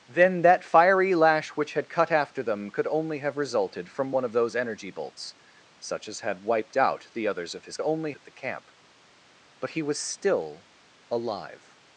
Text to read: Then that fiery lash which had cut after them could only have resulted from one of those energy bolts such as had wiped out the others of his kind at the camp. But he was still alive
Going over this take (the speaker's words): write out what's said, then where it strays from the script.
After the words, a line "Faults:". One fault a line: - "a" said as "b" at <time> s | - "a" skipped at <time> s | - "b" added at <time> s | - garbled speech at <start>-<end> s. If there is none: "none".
Then that fiery lash which had cut after them could only have resulted from one of those energy bolts such as had wiped out the others of his only at the camp. But he was still alive
Faults:
- "kind" said as "only" at 7.8 s